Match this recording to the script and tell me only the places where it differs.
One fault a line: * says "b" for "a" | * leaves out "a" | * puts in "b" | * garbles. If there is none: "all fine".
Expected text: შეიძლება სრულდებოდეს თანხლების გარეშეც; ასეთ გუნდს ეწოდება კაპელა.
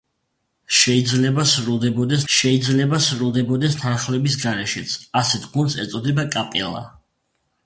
* puts in "შეიძლება სრულდებოდეს"